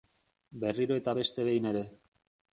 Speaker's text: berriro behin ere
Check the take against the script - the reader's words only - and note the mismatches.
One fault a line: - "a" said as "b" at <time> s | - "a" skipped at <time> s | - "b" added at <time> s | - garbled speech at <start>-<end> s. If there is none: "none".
- "eta beste" added at 1.0 s